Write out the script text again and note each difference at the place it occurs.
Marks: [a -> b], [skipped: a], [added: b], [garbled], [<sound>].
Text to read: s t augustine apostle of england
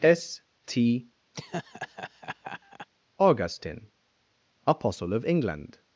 s t [laugh] augustine apostle of england